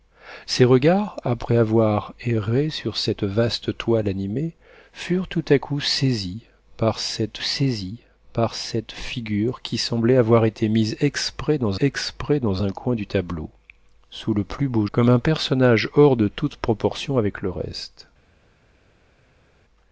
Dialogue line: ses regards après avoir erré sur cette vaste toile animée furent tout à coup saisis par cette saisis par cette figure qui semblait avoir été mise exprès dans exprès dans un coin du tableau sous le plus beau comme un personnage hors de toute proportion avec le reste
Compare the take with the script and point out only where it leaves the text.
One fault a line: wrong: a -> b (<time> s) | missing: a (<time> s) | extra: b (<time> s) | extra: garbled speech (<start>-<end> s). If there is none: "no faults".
no faults